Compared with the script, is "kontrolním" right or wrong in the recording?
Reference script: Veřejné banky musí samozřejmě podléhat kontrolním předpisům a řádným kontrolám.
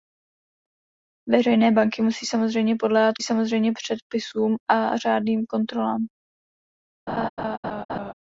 wrong